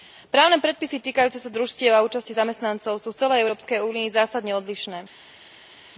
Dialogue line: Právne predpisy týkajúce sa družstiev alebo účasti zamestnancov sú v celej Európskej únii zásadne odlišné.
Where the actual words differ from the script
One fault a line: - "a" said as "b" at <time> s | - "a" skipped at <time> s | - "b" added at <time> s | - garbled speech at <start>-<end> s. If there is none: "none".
- "alebo" said as "a" at 1.9 s